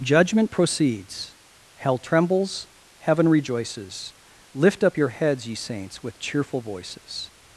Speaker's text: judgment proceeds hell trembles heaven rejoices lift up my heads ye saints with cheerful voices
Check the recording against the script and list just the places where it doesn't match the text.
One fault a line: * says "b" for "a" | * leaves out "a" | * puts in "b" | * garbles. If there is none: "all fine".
* says "your" for "my"